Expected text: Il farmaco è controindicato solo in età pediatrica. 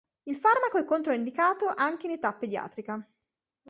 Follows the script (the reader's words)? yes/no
no